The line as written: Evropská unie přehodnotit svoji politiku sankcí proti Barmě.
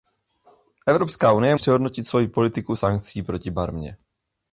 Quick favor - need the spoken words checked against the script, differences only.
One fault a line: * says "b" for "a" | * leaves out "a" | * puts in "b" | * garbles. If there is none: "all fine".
all fine